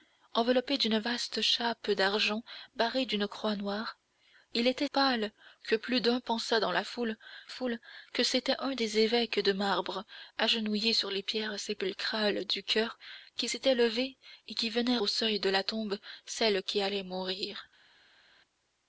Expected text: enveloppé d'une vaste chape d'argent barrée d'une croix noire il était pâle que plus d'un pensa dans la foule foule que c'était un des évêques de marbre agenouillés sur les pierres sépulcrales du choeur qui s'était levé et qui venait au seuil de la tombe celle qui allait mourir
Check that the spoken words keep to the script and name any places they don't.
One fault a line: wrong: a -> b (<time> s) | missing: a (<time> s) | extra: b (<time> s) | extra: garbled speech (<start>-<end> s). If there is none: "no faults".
no faults